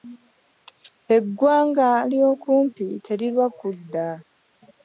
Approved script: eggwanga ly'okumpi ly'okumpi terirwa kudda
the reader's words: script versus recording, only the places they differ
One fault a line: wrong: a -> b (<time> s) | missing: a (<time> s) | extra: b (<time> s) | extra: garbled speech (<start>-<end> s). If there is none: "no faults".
missing: ly'okumpi (2.9 s)